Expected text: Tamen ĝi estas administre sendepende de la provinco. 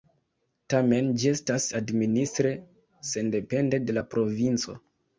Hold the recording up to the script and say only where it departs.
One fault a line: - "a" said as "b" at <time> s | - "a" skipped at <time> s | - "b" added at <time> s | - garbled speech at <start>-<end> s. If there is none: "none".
none